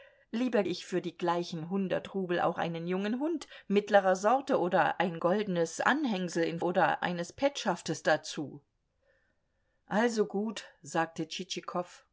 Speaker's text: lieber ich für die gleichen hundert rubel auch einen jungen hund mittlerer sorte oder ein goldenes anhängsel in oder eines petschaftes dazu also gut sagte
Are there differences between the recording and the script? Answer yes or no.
no